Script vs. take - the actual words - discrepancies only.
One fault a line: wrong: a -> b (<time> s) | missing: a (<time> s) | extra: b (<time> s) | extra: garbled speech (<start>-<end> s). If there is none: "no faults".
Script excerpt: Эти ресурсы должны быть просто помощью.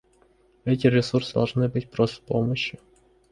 no faults